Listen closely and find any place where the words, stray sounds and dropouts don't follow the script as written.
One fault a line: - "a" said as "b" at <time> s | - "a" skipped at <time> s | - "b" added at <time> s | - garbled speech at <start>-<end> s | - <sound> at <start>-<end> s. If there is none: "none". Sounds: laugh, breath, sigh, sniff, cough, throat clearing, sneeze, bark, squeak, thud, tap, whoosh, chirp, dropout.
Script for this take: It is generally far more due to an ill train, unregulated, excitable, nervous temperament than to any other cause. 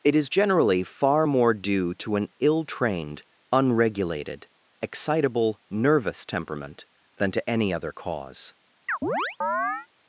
- "train" said as "trained" at 2.7 s
- chirp at 8.9-9.9 s